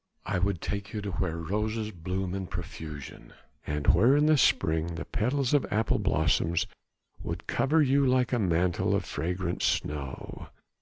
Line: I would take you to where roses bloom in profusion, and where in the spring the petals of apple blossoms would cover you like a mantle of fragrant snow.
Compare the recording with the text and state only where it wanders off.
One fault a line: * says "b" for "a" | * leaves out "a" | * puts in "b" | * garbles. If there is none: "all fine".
all fine